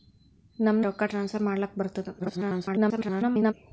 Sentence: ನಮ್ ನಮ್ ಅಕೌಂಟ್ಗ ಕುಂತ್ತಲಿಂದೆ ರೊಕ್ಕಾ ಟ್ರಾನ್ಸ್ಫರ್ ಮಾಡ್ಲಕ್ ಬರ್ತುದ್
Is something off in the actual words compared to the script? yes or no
yes